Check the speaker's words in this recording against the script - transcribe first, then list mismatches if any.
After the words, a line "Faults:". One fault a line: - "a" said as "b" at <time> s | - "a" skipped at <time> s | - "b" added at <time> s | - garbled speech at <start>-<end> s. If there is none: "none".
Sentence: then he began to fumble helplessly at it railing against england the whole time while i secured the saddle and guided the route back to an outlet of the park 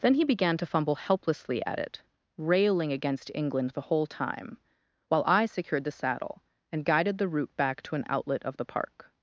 then he began to fumble helplessly at it railing against england the whole time while i secured the saddle and guided the route back to an outlet of the park
Faults:
none